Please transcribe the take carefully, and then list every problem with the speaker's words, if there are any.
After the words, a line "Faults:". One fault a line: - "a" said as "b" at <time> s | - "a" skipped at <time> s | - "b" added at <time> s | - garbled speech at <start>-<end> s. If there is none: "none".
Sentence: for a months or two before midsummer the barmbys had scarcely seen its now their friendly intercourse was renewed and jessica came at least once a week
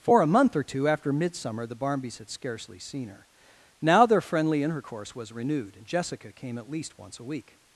for a month or two after midsummer the barmbys had scarcely seen her now their friendly intercourse was renewed and jessica came at least once a week
Faults:
- "months" said as "month" at 0.3 s
- "before" said as "after" at 0.9 s
- "its" said as "her" at 3.1 s